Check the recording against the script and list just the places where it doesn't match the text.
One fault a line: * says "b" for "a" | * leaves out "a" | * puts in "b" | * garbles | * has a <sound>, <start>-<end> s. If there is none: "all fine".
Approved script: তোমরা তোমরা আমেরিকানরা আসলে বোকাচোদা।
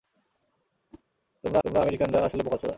* has a whoosh, 0.9-1.0 s